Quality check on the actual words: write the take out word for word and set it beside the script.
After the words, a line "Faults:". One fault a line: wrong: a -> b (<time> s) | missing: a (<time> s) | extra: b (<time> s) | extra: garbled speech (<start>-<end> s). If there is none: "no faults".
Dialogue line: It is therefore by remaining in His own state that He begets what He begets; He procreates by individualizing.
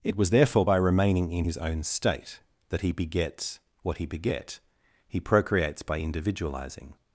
It was therefore by remaining in His own state that He begets what He beget; He procreates by individualizing.
Faults:
wrong: is -> was (0.1 s)
wrong: begets -> beget (4.0 s)